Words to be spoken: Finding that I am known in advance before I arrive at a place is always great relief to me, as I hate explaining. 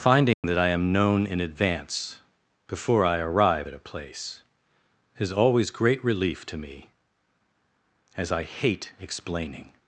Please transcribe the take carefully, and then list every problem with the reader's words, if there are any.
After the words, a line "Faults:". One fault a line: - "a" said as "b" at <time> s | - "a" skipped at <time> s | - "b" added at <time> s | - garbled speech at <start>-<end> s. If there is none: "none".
Finding that I am known in advance before I arrive at a place is always great relief to me, as I hate explaining.
Faults:
none